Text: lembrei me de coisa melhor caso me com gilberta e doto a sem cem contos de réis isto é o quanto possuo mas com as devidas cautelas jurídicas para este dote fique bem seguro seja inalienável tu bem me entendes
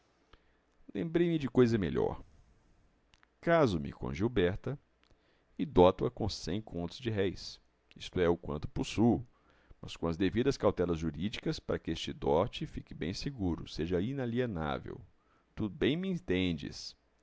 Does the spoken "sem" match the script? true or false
false